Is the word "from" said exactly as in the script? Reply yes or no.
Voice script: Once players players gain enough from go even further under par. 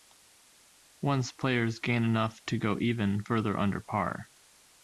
no